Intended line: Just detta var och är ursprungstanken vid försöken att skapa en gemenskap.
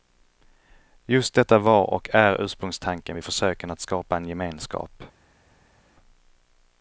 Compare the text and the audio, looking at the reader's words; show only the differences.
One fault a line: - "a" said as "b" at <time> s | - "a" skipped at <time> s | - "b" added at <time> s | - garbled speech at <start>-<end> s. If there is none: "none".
none